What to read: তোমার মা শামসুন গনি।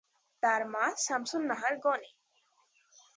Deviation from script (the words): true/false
true